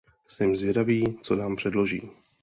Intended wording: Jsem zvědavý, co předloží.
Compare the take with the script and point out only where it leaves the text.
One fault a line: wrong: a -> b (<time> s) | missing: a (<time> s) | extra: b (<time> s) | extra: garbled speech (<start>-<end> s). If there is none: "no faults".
extra: nám (1.3 s)